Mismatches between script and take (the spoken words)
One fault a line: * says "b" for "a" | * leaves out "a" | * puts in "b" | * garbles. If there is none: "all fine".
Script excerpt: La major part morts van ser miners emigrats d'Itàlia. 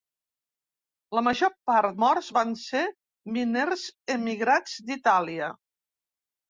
all fine